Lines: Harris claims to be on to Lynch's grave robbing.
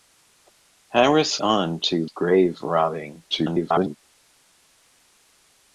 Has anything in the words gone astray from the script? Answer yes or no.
yes